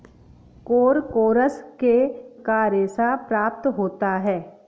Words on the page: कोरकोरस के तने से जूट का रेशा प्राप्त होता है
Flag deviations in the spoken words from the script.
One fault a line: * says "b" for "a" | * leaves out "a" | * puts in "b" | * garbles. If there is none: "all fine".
* leaves out "तने से जूट"